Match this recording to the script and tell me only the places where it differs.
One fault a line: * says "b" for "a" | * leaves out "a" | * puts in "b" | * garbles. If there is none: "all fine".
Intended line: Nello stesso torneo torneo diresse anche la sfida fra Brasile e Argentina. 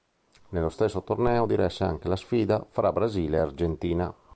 * leaves out "torneo"